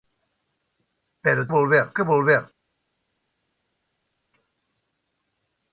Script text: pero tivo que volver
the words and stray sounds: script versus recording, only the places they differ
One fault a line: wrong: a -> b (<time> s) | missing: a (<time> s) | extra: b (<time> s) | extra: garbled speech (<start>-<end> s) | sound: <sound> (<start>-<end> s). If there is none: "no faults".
wrong: tivo -> volver (1.5 s)